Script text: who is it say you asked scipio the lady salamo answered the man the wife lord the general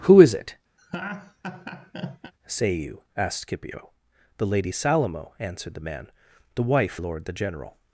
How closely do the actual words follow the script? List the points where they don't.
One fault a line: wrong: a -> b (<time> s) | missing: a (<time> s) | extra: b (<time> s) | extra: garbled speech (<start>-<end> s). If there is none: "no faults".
no faults